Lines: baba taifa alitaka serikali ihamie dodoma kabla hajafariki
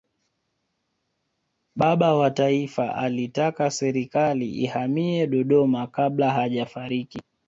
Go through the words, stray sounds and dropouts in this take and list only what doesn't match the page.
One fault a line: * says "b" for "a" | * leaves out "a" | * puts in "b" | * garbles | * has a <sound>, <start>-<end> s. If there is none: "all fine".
* puts in "wa"